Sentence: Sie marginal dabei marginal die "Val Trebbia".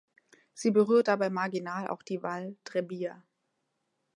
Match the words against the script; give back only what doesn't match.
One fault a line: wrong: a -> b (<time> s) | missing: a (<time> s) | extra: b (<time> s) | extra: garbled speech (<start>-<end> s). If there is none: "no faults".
wrong: marginal -> berührt (0.7 s)
extra: auch (1.8 s)